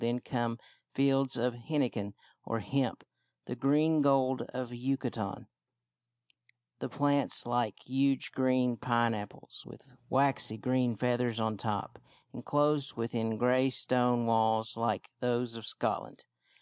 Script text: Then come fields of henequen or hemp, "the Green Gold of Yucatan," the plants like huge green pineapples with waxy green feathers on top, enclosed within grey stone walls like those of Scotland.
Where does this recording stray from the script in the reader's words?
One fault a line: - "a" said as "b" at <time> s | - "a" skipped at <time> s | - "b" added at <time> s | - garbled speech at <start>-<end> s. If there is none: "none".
none